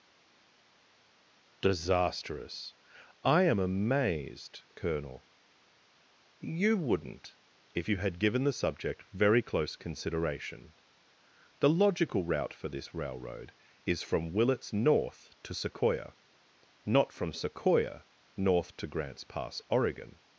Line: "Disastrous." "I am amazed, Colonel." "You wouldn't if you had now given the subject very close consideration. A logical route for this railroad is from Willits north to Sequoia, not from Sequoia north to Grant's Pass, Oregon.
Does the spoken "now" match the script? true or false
false